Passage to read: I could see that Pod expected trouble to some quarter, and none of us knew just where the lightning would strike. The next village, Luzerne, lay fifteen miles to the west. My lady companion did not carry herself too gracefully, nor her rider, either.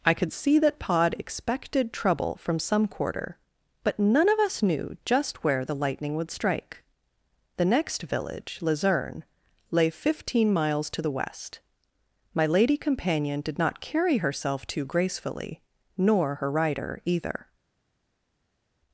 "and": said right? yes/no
no